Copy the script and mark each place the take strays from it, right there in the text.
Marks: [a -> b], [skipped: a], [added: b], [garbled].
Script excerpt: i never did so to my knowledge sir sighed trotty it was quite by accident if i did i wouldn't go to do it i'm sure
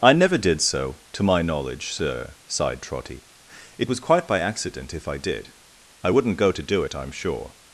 i never did so to my knowledge sir sighed trotty it was quite by accident if i did i wouldn't go to do it i'm sure